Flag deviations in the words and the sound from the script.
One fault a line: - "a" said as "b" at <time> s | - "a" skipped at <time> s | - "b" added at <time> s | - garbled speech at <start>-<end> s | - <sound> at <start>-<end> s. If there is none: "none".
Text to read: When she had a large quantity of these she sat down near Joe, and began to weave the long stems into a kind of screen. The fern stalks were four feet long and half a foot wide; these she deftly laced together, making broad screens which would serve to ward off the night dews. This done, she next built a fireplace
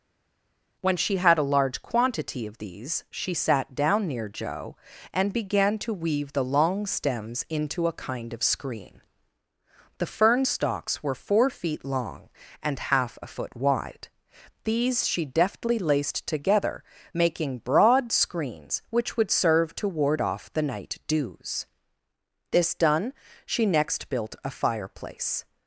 none